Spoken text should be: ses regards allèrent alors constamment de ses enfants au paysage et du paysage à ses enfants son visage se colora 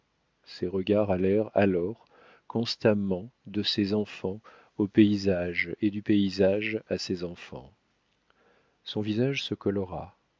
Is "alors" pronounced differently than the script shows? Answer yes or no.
no